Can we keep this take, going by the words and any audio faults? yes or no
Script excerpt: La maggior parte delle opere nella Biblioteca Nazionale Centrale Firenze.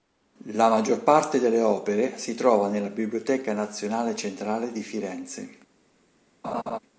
no